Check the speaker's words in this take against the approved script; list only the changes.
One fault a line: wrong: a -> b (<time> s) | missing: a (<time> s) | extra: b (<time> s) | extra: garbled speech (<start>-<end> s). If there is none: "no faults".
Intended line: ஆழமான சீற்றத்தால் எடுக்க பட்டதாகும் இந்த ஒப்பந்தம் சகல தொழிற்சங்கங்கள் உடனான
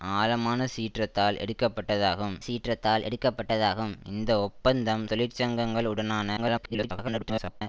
extra: சீற்றத்தால் எடுக்க பட்டதாகும் (2.4 s)
missing: சகல (5.1 s)
extra: garbled speech (6.4-7.6 s)